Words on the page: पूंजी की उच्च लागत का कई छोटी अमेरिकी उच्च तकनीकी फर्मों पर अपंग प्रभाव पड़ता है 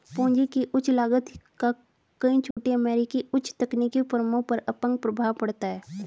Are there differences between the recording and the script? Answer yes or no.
no